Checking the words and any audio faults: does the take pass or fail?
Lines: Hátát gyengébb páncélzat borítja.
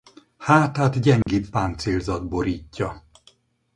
fail